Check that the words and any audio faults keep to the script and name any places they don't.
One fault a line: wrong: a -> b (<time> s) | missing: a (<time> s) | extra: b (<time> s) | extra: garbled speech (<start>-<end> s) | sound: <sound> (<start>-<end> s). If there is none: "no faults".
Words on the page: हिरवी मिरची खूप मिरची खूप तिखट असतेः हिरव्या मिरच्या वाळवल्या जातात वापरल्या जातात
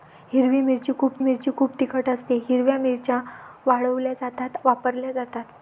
no faults